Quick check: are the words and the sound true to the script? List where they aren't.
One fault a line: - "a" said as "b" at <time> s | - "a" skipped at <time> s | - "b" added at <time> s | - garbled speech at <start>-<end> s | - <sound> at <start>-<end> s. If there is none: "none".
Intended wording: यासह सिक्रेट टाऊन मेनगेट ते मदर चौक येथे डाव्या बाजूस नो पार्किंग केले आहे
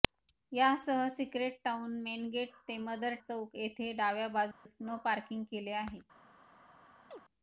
- dropout at 4.5-4.7 s
- chirp at 7.1-7.2 s